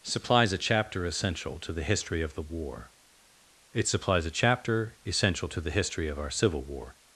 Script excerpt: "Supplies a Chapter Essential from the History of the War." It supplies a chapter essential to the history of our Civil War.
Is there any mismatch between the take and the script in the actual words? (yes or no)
yes